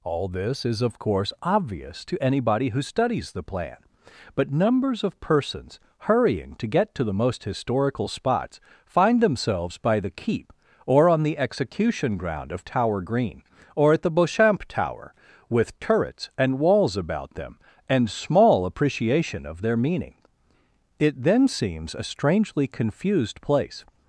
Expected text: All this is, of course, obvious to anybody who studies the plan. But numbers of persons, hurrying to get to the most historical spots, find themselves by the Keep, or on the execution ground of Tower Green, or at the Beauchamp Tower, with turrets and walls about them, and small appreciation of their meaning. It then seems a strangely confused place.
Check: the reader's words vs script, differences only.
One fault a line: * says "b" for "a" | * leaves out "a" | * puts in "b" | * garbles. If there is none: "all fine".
all fine